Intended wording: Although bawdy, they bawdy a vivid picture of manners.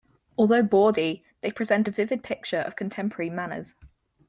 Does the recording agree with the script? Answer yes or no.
no